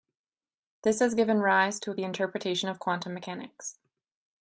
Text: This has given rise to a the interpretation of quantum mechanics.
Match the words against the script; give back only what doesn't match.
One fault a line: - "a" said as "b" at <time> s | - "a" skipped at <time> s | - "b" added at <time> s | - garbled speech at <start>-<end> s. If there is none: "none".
none